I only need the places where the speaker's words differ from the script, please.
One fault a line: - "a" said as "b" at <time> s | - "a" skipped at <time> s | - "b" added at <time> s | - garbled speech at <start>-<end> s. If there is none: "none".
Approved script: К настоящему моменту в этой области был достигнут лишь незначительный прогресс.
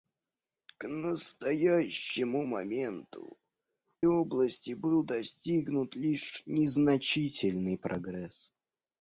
- "в этой" skipped at 3.4 s